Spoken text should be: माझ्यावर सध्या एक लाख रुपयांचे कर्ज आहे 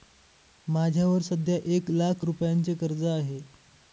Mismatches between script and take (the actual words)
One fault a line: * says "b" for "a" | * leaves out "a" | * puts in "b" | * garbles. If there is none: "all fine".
all fine